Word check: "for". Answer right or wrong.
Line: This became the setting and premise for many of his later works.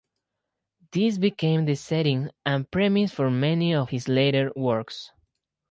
right